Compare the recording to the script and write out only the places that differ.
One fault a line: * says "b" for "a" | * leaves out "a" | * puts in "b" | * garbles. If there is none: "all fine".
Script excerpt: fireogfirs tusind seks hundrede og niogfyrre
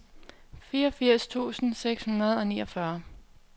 all fine